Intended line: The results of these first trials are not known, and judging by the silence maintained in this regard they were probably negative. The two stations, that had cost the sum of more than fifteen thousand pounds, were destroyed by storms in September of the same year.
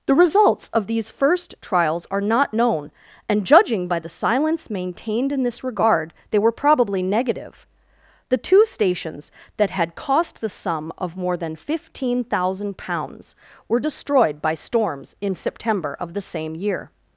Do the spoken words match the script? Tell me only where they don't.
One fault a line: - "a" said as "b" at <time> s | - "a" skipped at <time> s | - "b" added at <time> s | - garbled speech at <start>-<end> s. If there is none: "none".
none